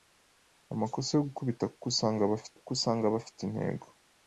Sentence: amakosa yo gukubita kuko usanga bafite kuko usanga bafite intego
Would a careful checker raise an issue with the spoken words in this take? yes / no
no